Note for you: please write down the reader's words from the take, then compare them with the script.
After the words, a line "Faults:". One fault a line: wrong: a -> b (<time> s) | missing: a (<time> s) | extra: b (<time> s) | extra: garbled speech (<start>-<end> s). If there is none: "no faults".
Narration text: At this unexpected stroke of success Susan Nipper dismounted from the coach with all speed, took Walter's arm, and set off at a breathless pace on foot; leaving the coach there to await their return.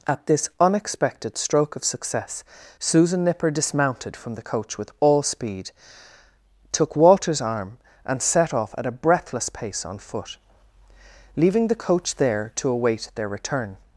At this unexpected stroke of success Susan Nipper dismounted from the coach with all speed, took Walter's arm, and set off at a breathless pace on foot; leaving the coach there to await their return.
Faults:
no faults